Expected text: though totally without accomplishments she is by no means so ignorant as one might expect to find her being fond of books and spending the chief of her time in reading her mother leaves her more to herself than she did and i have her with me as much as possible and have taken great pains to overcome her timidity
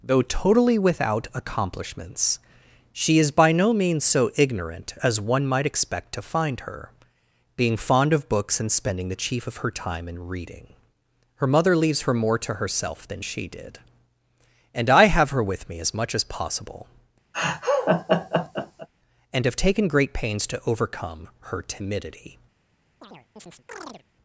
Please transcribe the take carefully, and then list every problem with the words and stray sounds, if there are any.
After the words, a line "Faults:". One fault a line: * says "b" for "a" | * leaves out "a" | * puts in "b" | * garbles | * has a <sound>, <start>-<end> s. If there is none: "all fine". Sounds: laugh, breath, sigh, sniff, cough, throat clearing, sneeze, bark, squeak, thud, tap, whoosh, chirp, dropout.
though totally without accomplishments she is by no means so ignorant as one might expect to find her being fond of books and spending the chief of her time in reading her mother leaves her more to herself than she did and i have her with me as much as possible and have taken great pains to overcome her timidity
Faults:
* has a laugh, 17.3-18.9 s
* has a chirp, 23.0-24.0 s